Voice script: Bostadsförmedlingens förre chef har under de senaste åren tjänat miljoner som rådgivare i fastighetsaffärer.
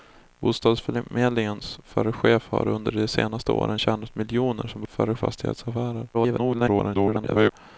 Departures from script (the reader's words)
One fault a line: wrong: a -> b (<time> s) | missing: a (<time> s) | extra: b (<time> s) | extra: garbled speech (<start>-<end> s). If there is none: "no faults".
wrong: rådgivare -> förre (4.9 s)
extra: garbled speech (6.1-7.5 s)